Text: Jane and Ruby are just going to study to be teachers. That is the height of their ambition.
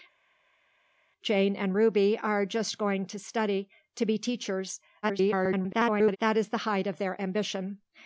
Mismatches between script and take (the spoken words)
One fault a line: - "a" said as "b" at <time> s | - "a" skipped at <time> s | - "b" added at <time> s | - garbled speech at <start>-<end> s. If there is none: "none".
- garbled speech at 5.0-6.2 s